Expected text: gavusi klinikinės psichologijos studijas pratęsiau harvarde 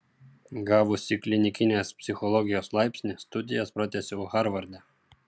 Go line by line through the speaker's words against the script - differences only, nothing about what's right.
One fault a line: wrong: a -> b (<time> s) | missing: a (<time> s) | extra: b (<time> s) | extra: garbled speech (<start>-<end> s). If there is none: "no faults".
extra: laipsnį (2.8 s)